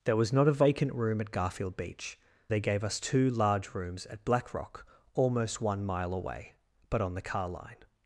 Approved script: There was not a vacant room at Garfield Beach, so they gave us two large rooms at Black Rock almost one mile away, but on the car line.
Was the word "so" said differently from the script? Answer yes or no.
yes